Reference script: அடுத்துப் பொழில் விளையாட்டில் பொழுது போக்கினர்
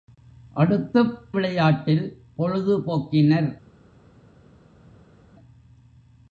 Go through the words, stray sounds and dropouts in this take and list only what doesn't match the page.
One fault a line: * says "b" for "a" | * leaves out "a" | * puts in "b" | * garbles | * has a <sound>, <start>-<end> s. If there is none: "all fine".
* leaves out "பொழில்"